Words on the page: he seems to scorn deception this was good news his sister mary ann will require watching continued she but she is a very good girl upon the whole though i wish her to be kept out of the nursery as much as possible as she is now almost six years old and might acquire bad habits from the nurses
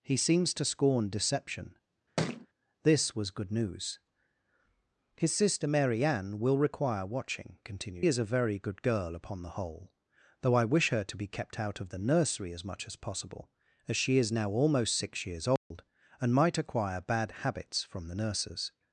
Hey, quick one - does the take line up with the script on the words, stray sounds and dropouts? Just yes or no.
no